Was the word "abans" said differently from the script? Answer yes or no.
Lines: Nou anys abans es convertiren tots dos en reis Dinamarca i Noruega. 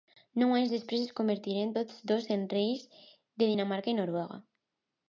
yes